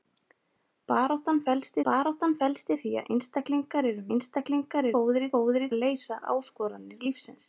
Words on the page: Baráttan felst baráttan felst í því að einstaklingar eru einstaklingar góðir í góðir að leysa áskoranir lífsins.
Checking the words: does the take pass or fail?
pass